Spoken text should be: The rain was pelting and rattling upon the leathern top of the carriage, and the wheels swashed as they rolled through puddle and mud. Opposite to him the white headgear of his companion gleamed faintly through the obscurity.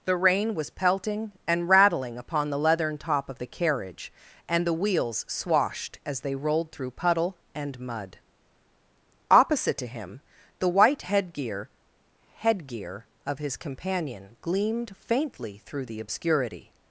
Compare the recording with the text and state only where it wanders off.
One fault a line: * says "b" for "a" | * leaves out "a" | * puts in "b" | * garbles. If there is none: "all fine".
* puts in "headgear"